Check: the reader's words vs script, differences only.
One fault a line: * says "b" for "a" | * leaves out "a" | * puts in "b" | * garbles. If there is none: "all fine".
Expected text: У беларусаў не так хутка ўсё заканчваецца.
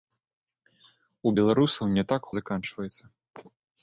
* leaves out "хутка ўсё"